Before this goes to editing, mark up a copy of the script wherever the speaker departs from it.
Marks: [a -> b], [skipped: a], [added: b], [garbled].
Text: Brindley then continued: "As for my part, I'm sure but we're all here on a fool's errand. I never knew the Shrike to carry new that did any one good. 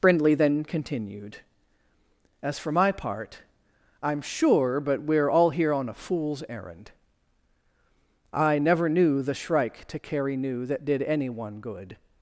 Brindley then continued: "As for my part, I'm sure but we're all here on a fool's errand. I never knew the Shrike to carry new that did any one good.